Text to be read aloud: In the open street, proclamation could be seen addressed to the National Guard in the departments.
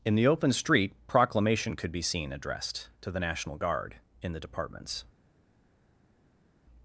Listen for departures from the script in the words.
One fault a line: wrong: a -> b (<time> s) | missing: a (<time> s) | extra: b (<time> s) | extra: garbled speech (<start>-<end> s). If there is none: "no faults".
no faults